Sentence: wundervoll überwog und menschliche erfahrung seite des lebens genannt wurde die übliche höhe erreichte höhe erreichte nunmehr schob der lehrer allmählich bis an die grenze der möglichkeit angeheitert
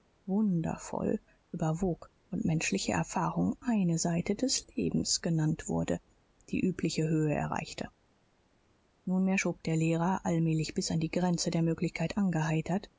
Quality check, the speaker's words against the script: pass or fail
fail